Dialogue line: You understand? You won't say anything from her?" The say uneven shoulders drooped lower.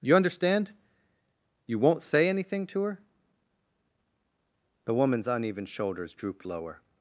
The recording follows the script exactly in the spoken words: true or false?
false